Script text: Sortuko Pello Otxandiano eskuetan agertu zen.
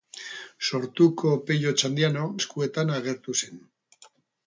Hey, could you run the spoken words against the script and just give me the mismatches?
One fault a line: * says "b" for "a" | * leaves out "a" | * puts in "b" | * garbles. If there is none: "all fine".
all fine